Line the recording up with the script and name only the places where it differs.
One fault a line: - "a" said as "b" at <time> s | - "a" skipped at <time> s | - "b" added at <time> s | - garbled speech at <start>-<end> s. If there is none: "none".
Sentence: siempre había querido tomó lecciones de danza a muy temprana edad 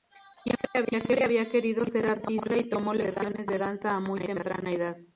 - "ser artista y" added at 1.9 s